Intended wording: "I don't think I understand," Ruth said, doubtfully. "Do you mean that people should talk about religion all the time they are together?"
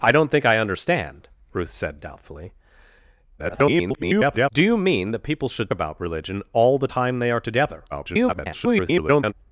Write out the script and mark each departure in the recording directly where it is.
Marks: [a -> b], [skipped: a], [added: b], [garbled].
"I don't think I understand," Ruth said, doubtfully. [garbled] "Do you mean that people should [skipped: talk] about religion all the time they are together?" [garbled]